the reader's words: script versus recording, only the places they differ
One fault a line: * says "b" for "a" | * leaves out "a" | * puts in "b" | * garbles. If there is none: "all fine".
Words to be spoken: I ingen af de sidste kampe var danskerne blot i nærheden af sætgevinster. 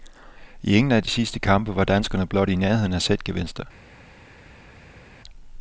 all fine